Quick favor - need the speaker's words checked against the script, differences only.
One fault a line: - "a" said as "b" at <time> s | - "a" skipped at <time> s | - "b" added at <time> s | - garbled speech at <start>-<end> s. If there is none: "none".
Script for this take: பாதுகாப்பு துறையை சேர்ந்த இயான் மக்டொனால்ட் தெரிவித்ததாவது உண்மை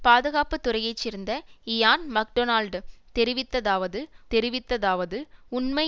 - "தெரிவித்ததாவது" added at 4.3 s